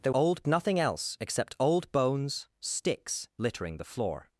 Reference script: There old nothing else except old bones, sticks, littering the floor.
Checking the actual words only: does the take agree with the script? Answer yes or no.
yes